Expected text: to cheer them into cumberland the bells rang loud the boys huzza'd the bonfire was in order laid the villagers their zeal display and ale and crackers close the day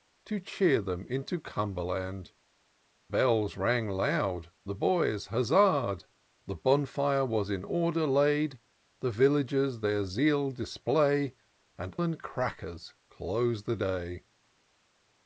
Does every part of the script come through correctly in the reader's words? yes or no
no